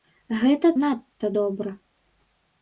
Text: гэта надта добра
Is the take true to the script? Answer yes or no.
yes